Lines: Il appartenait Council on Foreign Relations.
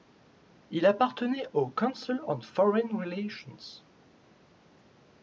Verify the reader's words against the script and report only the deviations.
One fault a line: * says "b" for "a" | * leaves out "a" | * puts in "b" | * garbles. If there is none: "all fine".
* puts in "au"